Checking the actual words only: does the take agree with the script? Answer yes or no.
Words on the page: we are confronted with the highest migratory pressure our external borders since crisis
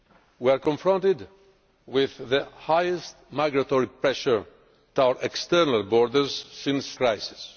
yes